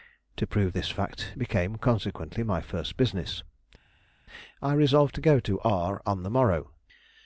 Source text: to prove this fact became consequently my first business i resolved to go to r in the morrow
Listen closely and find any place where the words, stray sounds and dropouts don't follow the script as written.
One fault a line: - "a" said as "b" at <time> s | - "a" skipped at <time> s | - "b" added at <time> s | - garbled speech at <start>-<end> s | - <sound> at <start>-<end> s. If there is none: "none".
- "in" said as "on" at 6.1 s